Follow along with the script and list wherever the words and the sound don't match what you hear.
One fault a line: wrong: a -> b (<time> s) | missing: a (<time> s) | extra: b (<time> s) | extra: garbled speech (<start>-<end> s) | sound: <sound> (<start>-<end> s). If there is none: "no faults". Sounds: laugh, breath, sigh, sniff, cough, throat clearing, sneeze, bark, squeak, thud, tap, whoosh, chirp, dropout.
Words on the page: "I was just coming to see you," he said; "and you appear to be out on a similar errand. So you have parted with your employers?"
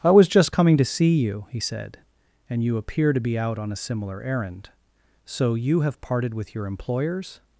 no faults